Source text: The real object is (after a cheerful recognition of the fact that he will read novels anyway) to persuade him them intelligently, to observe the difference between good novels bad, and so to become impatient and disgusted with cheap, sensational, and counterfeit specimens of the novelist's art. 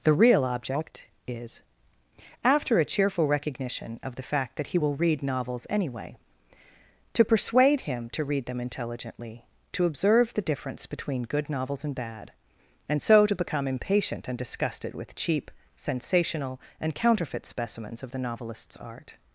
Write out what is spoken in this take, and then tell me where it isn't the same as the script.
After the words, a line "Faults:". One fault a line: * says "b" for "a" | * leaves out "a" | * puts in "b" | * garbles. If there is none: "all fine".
The real object is (after a cheerful recognition of the fact that he will read novels anyway) to persuade him to read them intelligently, to observe the difference between good novels and bad, and so to become impatient and disgusted with cheap, sensational, and counterfeit specimens of the novelist's art.
Faults:
* puts in "to read"
* puts in "and"